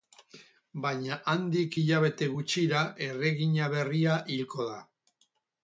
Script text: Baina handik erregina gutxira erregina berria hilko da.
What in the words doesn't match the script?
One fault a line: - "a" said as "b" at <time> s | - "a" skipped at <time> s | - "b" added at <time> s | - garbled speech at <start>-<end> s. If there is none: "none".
- "erregina" said as "hilabete" at 1.8 s